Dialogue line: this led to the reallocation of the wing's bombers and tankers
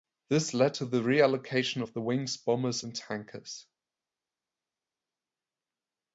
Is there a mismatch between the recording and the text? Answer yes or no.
no